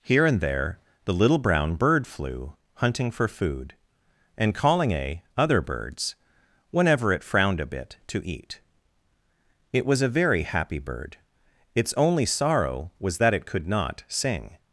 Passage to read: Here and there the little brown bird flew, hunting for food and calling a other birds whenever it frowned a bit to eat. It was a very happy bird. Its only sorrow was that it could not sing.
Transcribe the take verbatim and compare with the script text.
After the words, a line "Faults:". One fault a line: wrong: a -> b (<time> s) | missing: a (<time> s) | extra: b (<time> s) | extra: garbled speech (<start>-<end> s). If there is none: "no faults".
Here and there the little brown bird flew, hunting for food and calling a other birds whenever it frowned a bit to eat. It was a very happy bird. Its only sorrow was that it could not sing.
Faults:
no faults